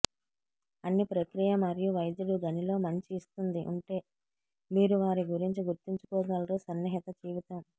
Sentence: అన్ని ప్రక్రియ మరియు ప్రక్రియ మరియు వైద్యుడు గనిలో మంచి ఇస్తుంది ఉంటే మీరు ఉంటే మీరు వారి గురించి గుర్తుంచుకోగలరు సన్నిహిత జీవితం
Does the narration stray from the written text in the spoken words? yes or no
yes